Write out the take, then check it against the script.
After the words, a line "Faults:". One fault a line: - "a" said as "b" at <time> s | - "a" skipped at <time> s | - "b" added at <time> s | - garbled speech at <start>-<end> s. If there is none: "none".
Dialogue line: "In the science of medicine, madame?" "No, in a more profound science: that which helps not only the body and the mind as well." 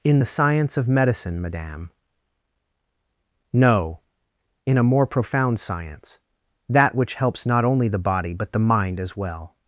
"In the science of medicine, madame?" "No, in a more profound science: that which helps not only the body but the mind as well."
Faults:
- "and" said as "but" at 8.3 s